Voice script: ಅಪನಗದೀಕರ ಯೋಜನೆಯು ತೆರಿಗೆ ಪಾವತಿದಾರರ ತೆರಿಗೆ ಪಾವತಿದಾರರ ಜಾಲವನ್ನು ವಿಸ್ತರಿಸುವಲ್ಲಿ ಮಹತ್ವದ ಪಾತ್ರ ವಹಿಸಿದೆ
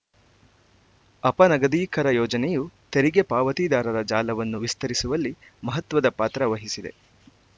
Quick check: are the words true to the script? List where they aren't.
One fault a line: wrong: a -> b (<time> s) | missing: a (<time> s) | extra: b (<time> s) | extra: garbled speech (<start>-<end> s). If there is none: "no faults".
missing: ತೆರಿಗೆ ಪಾವತಿದಾರರ (4.0 s)